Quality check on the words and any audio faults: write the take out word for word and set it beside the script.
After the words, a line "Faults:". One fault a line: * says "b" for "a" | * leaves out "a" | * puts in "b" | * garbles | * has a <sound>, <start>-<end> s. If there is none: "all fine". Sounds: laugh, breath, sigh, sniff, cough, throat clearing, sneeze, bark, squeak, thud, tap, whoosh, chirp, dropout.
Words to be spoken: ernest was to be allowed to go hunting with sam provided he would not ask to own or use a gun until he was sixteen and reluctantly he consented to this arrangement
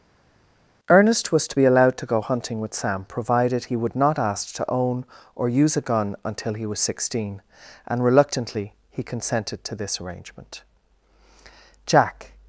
ernest was to be allowed to go hunting with sam provided he would not ask to own or use a gun until he was sixteen and reluctantly he consented to this arrangement jack
Faults:
* puts in "jack"